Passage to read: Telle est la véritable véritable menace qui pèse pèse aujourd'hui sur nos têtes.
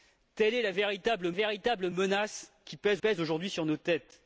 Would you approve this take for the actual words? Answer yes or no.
yes